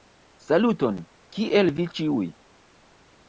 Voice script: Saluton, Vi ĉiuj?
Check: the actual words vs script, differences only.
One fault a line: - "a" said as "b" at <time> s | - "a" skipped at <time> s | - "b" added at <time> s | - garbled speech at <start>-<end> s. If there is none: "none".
- "Kiel" added at 1.4 s